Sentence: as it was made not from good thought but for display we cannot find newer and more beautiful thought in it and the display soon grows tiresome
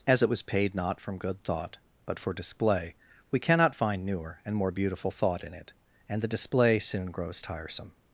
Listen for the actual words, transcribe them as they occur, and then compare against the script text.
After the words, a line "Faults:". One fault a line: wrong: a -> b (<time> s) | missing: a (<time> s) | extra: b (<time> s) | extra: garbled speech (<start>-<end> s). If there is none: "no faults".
as it was paid not from good thought but for display we cannot find newer and more beautiful thought in it and the display soon grows tiresome
Faults:
wrong: made -> paid (0.4 s)